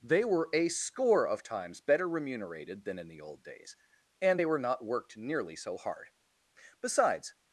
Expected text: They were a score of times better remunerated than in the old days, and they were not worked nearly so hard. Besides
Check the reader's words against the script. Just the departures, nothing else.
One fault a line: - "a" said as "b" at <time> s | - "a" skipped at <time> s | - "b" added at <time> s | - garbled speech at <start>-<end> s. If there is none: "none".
none